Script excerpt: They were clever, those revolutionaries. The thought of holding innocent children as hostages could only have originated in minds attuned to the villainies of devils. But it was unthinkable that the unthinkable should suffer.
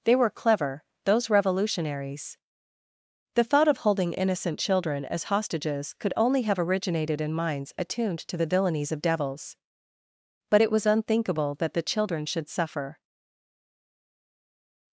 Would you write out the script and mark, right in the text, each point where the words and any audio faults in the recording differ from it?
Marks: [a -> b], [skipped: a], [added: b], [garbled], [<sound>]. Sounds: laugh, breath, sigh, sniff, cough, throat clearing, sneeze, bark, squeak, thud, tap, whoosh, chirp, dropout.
They were clever, those revolutionaries. The thought of holding innocent children as hostages could only have originated in minds attuned to the villainies of devils. But it was unthinkable that the [unthinkable -> children] should suffer.